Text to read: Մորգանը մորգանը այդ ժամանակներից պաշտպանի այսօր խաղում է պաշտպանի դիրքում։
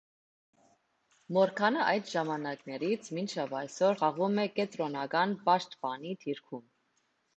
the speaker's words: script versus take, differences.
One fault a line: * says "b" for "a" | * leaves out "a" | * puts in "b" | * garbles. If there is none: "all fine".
* leaves out "մորգանը"
* says "մինչև" for "պաշտպանի"
* puts in "կենտրոնական"